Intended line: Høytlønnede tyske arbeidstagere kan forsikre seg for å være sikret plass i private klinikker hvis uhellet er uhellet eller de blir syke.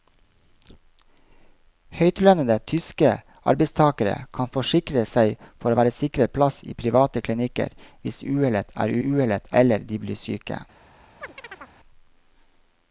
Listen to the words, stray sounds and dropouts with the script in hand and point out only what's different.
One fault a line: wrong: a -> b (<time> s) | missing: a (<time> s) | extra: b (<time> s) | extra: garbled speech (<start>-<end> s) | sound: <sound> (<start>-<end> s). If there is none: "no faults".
sound: chirp (11.2-11.7 s)